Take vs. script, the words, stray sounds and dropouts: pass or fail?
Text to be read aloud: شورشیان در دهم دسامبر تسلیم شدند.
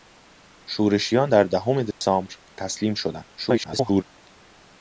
fail